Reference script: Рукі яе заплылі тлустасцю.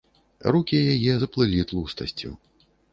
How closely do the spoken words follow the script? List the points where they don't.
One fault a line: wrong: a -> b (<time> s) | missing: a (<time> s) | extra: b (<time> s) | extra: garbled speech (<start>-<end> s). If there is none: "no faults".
no faults